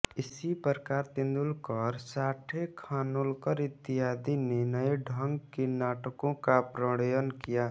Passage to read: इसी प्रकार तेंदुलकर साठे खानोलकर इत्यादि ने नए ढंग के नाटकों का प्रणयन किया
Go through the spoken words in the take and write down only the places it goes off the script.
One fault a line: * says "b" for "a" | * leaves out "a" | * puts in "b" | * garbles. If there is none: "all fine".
all fine